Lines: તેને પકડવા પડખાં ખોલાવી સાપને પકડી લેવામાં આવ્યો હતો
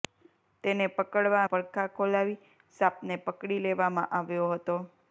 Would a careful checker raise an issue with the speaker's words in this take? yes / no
no